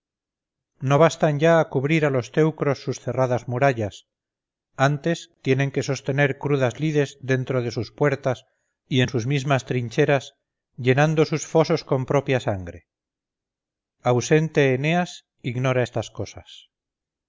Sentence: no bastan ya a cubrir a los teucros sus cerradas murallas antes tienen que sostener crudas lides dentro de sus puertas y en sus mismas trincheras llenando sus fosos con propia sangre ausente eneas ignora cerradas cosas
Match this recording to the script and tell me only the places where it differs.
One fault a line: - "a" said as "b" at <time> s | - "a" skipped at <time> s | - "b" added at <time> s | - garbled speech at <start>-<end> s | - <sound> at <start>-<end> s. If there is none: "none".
- "cerradas" said as "estas" at 15.8 s